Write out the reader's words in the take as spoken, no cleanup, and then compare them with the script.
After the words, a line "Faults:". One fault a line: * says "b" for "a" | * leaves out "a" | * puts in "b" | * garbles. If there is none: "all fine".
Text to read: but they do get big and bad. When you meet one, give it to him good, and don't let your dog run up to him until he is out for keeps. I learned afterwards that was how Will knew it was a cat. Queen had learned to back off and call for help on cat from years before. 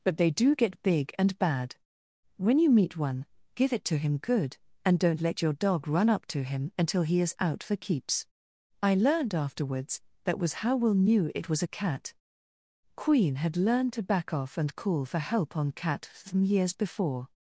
but they do get big and bad. When you meet one, give it to him good, and don't let your dog run up to him until he is out for keeps. I learned afterwards that was how Will knew it was a cat. Queen had learned to back off and call for help on cat from years before.
Faults:
all fine